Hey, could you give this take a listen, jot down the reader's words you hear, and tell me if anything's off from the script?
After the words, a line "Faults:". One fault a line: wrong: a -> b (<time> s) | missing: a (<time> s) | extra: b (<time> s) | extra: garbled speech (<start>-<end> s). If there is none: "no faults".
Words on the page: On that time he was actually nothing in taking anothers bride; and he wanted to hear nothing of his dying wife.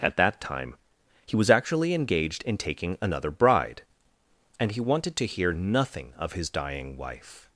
At that time he was actually engaged in taking another bride; and he wanted to hear nothing of his dying wife.
Faults:
wrong: On -> At (0.0 s)
wrong: nothing -> engaged (1.9 s)
wrong: anothers -> another (3.0 s)